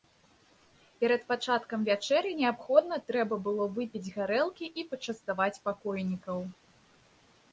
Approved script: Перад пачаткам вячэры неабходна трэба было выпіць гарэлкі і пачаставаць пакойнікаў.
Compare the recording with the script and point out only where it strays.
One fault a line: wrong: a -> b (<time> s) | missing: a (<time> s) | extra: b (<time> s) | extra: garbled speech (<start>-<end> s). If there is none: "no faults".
no faults